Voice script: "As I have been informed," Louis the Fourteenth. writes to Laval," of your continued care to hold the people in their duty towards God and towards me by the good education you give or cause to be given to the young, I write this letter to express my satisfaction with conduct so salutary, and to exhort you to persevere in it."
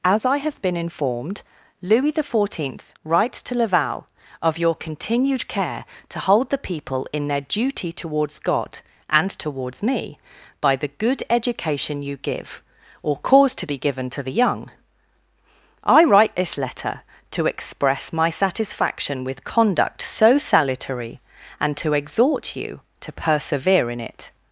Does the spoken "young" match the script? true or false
true